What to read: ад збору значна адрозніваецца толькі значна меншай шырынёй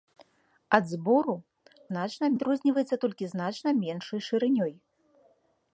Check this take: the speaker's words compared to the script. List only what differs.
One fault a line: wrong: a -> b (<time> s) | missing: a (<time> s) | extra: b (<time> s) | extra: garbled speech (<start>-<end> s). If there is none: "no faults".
no faults